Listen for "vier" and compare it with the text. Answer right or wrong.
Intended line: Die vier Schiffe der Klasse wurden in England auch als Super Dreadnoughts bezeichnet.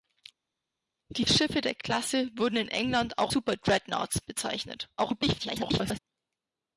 wrong